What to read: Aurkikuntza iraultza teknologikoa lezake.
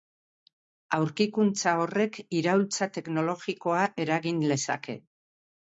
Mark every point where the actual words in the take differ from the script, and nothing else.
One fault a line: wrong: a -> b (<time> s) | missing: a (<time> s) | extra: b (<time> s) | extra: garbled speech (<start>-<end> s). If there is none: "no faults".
extra: horrek (1.8 s)
extra: eragin (4.1 s)